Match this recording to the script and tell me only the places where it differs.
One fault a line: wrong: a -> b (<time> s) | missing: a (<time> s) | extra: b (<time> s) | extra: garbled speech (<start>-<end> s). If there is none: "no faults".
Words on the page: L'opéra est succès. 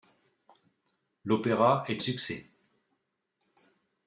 no faults